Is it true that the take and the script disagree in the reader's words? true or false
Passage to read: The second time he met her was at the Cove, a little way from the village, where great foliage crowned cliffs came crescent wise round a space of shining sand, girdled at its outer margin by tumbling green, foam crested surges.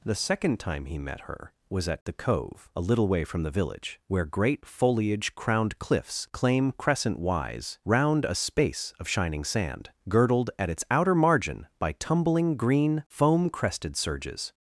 true